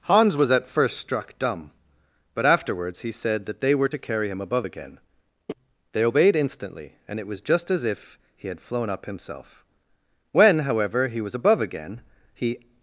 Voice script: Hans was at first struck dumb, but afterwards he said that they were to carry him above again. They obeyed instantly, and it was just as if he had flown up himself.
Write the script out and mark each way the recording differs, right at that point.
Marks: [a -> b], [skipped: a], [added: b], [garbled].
Hans was at first struck dumb, but afterwards he said that they were to carry him above again. They obeyed instantly, and it was just as if he had flown up himself. [added: When however he was above again he]